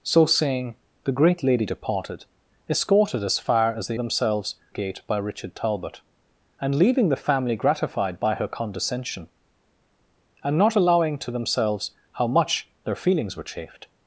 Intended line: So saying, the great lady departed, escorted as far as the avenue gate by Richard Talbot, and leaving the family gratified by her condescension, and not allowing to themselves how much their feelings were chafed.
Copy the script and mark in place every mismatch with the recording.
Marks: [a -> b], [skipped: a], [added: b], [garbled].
So saying, the great lady departed, escorted as far as the [avenue -> themselves] gate by Richard Talbot, and leaving the family gratified by her condescension, and not allowing to themselves how much their feelings were chafed.